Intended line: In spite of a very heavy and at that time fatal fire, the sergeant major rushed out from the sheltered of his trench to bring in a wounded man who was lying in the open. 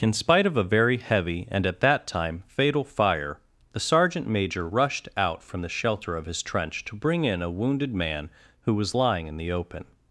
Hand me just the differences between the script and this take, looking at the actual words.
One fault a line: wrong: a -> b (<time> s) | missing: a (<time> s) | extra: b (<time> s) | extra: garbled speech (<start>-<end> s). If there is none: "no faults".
wrong: sheltered -> shelter (5.7 s)